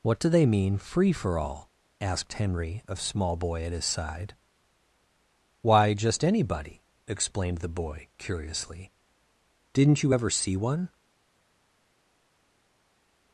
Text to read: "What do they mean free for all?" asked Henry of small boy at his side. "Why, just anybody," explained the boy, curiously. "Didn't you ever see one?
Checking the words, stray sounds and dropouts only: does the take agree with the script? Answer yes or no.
yes